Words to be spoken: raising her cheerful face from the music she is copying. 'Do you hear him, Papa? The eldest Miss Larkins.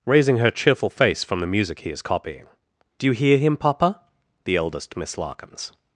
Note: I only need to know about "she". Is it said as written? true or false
false